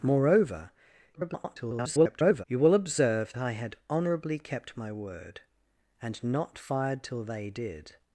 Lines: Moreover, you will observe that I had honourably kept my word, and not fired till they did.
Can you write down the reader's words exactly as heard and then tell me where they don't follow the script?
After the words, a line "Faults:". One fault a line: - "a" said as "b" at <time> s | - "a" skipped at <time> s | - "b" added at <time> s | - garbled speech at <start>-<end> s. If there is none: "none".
Moreover, [garbled] you will observe I had honourably kept my word, and not fired till they did.
Faults:
- garbled speech at 1.1-2.4 s
- "that" skipped at 3.3 s